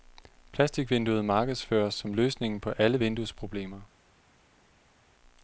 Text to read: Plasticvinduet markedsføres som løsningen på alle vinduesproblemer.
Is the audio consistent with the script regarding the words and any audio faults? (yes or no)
yes